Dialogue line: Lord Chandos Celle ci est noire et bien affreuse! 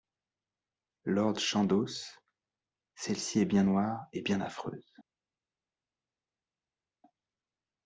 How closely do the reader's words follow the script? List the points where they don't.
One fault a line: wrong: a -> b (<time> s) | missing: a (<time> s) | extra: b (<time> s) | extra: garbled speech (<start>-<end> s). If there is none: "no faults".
extra: bien (3.5 s)